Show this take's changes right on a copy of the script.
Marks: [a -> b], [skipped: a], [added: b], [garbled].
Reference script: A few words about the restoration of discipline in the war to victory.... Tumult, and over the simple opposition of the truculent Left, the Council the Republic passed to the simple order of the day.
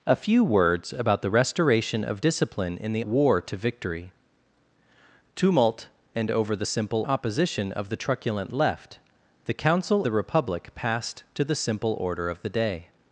A few words about the restoration of discipline in the war to victory.... Tumult, and over the simple opposition of the truculent Left, the Council the Republic passed to the simple order of the day.